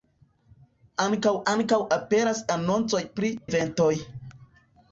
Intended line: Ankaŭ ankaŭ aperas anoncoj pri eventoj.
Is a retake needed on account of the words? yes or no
no